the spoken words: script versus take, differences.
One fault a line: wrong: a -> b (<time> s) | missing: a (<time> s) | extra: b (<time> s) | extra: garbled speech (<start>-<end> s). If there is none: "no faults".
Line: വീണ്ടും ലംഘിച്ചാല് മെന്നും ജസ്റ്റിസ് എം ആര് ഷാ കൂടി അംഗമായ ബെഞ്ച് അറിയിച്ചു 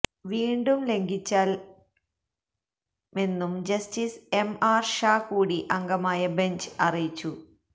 no faults